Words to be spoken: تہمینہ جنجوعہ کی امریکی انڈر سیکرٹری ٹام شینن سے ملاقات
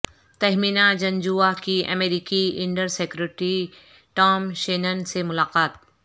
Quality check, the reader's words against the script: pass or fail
pass